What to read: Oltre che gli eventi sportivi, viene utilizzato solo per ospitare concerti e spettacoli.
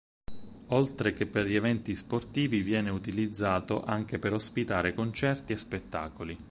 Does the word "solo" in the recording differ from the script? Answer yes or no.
yes